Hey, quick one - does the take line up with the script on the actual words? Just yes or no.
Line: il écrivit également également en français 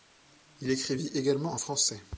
no